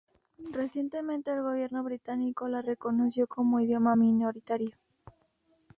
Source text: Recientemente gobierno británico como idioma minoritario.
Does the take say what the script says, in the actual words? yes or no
no